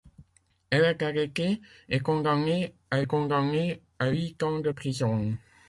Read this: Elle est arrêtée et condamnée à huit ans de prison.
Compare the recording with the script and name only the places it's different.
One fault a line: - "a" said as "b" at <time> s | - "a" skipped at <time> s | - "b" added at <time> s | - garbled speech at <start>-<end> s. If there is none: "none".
- "condamnée à" added at 3.0 s